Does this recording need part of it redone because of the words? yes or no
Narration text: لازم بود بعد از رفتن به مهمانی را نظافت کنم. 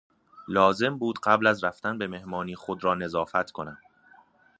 yes